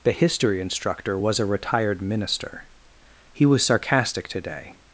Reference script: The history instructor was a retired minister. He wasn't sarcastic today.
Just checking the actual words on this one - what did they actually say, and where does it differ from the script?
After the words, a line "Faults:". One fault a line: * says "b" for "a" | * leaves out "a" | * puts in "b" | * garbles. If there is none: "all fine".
The history instructor was a retired minister. He was sarcastic today.
Faults:
* says "was" for "wasn't"